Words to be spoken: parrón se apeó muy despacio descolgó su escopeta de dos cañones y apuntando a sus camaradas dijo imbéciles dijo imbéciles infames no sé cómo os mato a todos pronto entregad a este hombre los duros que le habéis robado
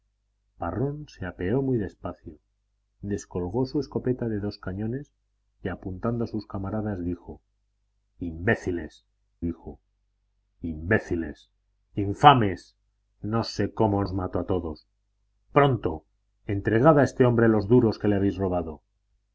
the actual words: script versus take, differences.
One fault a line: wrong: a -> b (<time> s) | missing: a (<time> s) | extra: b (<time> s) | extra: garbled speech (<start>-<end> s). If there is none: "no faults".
no faults